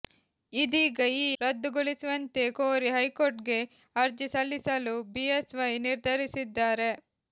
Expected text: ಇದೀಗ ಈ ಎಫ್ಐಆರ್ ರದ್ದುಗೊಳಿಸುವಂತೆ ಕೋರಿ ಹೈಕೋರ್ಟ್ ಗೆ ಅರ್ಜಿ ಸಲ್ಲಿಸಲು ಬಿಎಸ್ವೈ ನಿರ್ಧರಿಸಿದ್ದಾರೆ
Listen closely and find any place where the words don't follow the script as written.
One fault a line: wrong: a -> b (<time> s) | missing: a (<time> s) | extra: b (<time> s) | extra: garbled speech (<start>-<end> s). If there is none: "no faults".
missing: ಎಫ್ಐಆರ್ (1.3 s)